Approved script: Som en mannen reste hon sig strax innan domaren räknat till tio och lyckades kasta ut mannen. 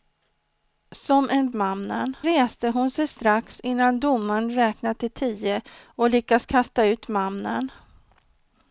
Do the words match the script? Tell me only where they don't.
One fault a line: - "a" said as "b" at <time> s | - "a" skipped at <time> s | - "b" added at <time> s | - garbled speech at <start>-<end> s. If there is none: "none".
none